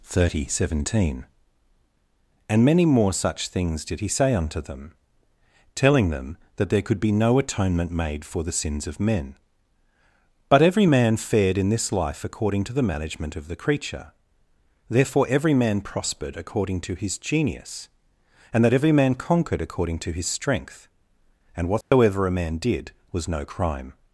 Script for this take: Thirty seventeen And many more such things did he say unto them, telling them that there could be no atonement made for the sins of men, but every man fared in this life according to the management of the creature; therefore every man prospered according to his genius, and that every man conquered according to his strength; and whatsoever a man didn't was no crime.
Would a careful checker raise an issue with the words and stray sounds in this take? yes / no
yes